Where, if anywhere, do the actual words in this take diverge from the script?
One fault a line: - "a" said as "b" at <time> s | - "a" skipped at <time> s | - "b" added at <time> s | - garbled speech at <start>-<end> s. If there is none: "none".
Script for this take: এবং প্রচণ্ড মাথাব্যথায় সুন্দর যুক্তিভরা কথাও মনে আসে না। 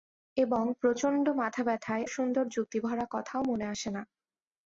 none